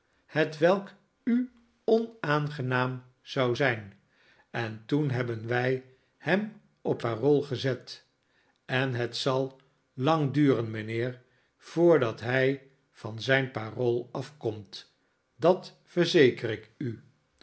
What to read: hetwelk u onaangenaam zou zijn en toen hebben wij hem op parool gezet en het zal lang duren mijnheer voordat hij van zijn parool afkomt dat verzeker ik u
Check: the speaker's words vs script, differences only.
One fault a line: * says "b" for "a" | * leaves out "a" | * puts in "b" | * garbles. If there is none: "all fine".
all fine